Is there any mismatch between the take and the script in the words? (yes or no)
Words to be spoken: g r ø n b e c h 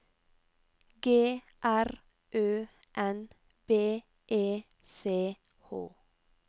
no